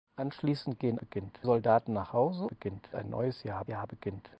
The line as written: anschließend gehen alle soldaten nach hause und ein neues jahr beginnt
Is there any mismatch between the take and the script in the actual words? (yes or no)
yes